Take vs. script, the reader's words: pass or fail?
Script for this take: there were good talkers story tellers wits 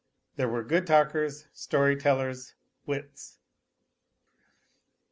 pass